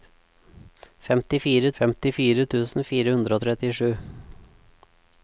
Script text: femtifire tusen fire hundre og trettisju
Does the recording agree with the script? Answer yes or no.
no